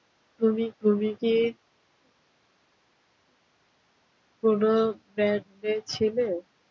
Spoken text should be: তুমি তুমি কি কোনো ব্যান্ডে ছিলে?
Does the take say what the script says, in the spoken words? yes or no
yes